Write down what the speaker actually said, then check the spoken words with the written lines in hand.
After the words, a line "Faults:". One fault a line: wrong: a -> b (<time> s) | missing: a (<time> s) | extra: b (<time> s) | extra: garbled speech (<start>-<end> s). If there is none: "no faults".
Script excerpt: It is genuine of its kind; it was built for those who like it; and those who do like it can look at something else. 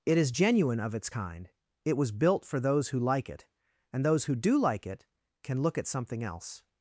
It is genuine of its kind; it was built for those who like it; and those who do like it can look at something else.
Faults:
no faults